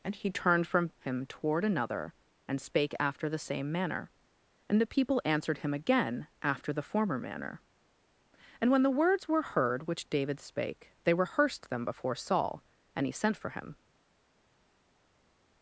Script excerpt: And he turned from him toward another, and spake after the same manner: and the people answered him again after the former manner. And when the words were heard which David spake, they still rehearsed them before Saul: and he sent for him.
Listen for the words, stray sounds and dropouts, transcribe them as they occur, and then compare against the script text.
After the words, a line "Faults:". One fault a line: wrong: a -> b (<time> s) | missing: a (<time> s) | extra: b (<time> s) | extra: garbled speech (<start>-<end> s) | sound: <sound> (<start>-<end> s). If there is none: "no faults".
And he turned from him toward another, and spake after the same manner: and the people answered him again after the former manner. And when the words were heard which David spake, they rehearsed them before Saul: and he sent for him.
Faults:
missing: still (11.1 s)